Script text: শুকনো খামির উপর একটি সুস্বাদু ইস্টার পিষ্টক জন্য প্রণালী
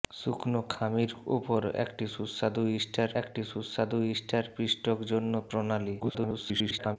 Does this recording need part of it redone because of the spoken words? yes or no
yes